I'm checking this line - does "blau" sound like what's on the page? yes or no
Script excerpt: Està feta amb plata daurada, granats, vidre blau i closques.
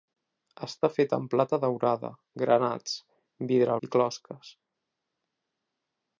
no